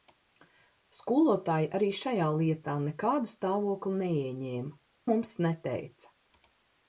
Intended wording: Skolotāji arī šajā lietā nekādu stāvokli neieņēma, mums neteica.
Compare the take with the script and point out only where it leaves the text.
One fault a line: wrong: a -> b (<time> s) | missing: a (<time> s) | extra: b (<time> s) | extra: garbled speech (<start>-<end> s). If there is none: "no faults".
no faults